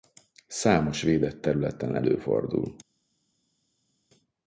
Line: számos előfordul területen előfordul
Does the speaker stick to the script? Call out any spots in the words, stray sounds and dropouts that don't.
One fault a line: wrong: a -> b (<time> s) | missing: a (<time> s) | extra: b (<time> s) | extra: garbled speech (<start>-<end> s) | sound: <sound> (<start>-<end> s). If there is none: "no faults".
wrong: előfordul -> védett (1.0 s)